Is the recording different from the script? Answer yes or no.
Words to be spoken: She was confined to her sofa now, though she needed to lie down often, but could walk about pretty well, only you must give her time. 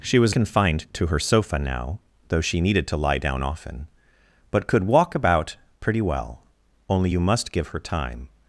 no